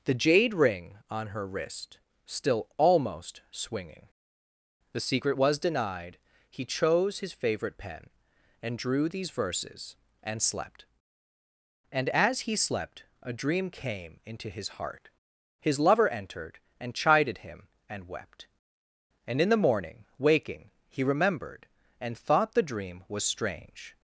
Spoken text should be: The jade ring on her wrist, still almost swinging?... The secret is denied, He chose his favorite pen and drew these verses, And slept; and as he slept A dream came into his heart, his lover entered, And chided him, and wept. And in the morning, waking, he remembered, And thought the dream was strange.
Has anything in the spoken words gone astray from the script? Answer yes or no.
yes